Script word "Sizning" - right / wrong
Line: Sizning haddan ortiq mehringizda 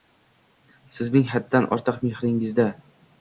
right